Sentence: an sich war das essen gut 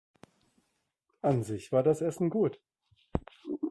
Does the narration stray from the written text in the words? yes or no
no